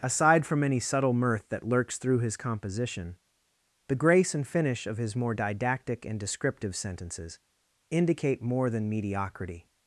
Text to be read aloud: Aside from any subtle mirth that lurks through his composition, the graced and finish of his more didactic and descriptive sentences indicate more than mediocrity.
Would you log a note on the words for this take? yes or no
yes